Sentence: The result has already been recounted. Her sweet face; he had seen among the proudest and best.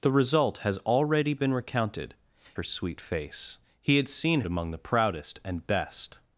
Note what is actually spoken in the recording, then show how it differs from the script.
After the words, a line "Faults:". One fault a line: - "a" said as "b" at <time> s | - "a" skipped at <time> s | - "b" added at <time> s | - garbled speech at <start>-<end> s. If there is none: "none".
The result has already been recounted. Her sweet face; he had seen among the proudest and best.
Faults:
none